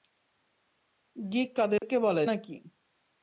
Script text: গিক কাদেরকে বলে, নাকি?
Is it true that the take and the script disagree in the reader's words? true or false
false